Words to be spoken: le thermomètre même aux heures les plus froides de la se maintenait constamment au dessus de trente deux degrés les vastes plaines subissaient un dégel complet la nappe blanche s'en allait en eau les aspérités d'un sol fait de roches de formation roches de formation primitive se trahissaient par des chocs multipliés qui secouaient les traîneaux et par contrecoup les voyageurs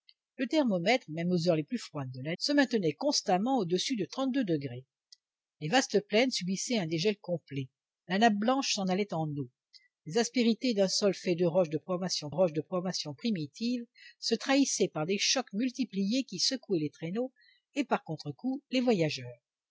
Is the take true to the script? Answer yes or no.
yes